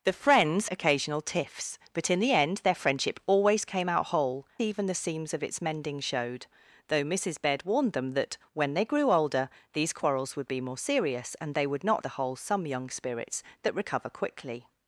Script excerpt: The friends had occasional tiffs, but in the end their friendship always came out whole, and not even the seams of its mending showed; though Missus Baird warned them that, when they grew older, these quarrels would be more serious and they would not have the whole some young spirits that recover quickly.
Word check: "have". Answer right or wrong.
wrong